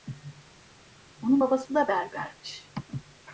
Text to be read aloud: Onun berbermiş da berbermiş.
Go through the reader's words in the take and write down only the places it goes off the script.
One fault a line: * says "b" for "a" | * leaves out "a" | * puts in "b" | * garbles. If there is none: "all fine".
* says "babası" for "berbermiş"